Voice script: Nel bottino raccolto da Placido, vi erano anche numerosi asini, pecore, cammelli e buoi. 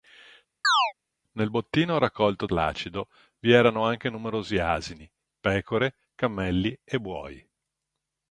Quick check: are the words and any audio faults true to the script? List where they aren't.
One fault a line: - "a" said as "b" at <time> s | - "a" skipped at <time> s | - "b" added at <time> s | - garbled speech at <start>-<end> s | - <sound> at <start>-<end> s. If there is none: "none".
- chirp at 0.6-0.9 s
- "da" skipped at 2.5 s